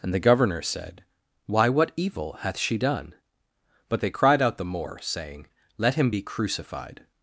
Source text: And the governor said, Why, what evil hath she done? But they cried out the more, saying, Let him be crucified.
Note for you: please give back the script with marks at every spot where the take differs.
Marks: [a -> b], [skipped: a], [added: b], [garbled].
And the governor said, Why, what evil hath she done? But they cried out the more, saying, Let him be crucified.